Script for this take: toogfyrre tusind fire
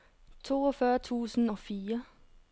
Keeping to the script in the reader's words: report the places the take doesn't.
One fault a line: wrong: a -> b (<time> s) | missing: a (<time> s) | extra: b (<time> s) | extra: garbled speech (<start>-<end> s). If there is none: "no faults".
extra: og (1.4 s)